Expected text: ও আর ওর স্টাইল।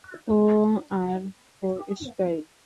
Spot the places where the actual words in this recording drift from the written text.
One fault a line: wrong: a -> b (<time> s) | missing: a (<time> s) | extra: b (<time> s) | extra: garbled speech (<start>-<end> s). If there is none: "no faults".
no faults